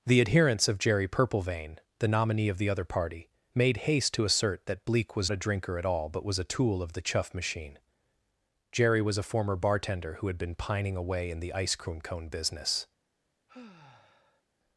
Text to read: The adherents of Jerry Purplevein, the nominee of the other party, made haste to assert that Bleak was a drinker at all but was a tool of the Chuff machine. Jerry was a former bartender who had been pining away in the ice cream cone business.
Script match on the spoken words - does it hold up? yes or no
yes